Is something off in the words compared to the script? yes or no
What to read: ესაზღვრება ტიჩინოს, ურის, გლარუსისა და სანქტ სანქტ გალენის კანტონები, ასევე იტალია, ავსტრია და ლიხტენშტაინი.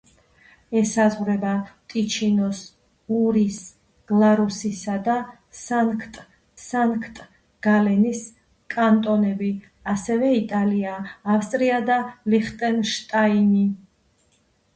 no